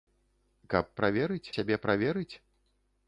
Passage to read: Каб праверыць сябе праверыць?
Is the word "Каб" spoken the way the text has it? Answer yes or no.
yes